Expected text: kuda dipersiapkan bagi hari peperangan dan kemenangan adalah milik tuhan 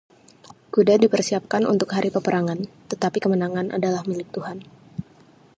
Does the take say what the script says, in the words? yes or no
no